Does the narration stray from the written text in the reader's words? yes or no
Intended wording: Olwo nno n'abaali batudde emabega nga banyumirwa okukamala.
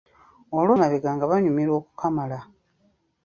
yes